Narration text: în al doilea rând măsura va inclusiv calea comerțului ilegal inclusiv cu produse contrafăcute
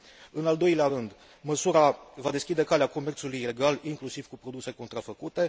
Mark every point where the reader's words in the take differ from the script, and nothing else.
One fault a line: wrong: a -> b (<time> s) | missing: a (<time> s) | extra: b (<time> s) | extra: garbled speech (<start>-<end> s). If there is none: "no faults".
wrong: inclusiv -> deschide (2.3 s)